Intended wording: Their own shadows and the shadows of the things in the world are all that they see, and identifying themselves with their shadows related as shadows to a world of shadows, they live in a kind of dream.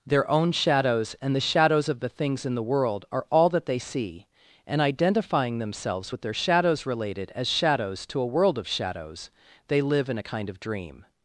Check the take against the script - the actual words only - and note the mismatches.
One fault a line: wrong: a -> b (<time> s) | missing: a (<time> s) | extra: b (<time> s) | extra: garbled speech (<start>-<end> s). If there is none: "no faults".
no faults